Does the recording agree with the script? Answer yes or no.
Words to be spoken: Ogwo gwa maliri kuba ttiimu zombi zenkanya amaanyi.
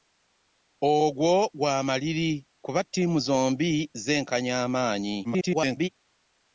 no